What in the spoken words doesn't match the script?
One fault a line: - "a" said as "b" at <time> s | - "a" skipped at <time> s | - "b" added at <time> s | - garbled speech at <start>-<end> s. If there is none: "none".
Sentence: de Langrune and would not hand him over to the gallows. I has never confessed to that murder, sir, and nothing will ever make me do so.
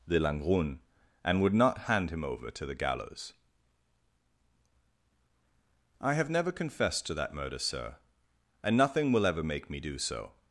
- "has" said as "have" at 6.1 s